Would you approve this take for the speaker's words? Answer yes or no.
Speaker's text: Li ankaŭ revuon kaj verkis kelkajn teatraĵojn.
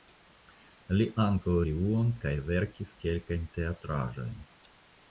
yes